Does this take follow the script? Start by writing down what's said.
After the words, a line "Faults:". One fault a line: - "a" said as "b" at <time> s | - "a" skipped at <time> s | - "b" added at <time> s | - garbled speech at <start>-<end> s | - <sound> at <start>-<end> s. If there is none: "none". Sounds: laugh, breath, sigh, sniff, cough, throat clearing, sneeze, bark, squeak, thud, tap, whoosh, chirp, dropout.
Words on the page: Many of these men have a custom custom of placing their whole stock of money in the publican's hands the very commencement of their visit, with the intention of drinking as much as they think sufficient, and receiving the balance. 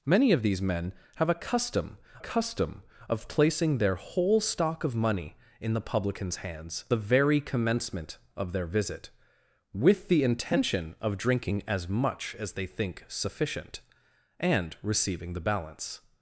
Many of these men have a custom custom of placing their whole stock of money in the publican's hands the very commencement of their visit, with the intention of drinking as much as they think sufficient, and receiving the balance.
Faults:
none